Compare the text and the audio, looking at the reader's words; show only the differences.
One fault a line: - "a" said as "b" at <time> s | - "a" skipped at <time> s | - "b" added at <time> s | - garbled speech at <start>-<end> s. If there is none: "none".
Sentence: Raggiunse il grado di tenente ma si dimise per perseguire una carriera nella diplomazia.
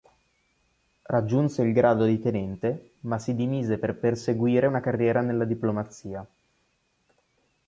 none